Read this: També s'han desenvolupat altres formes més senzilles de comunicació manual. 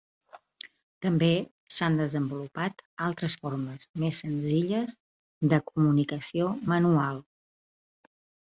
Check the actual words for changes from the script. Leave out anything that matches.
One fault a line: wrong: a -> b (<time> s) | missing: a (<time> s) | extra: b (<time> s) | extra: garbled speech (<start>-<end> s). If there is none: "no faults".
no faults